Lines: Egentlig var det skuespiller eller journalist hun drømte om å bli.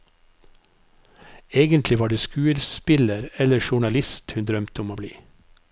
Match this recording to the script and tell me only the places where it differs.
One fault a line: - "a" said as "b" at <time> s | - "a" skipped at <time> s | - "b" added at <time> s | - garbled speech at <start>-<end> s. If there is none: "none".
none